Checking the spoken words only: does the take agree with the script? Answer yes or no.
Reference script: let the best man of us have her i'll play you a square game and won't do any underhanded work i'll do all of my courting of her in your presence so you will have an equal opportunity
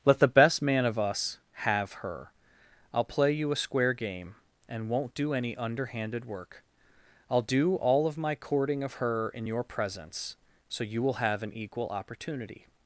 yes